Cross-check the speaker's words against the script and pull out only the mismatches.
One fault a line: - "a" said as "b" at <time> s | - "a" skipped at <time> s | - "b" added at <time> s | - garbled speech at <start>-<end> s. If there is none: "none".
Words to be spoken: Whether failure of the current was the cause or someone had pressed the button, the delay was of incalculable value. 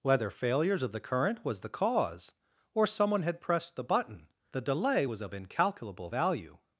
- "failure" said as "failures" at 0.3 s